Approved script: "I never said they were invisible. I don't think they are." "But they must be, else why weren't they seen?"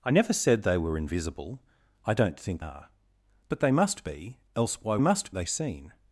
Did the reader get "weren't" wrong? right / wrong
wrong